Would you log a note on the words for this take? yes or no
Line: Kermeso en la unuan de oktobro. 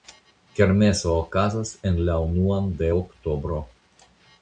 yes